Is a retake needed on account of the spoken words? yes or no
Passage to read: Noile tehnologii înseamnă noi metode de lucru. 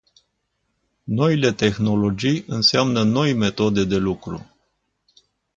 no